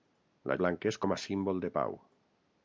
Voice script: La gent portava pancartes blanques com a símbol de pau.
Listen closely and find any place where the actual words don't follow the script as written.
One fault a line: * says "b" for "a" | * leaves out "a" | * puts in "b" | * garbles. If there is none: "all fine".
* leaves out "gent portava pancartes"